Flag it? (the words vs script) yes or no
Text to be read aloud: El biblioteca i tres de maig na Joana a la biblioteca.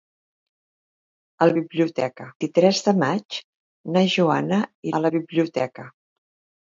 no